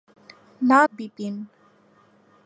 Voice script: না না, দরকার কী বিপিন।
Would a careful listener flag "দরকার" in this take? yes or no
yes